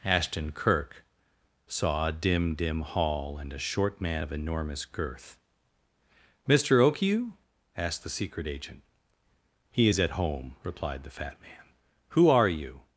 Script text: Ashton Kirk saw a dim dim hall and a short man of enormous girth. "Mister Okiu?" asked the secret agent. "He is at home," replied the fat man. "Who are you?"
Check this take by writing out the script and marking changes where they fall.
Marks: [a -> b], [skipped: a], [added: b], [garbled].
Ashton Kirk saw a dim dim hall and a short man of enormous girth. "Mister Okiu?" asked the secret agent. "He is at home," replied the fat man. "Who are you?"